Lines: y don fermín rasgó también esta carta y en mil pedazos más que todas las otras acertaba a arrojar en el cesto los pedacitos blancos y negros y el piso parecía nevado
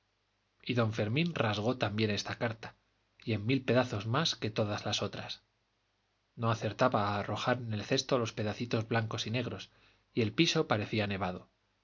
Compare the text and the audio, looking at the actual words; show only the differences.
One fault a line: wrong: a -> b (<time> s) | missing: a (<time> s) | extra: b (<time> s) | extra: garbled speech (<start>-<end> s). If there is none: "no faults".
extra: no (6.3 s)